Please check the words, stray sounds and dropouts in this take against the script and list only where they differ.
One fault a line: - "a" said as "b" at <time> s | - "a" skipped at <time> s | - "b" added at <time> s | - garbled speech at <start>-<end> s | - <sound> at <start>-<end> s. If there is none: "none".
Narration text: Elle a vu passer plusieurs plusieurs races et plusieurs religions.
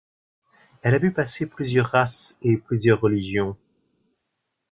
- "plusieurs" skipped at 1.9 s